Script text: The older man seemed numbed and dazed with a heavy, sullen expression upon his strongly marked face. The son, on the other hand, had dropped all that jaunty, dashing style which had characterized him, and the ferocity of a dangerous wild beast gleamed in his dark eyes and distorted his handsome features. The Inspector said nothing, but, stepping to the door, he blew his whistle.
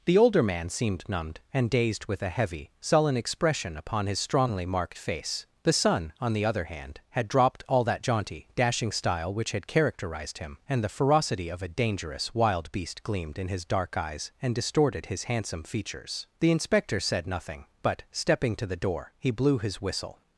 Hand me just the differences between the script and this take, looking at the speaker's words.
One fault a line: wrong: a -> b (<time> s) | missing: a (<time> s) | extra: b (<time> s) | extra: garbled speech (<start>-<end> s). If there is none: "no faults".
no faults